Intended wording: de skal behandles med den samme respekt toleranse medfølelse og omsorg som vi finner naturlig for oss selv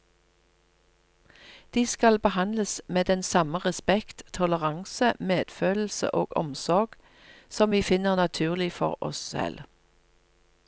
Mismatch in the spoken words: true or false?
false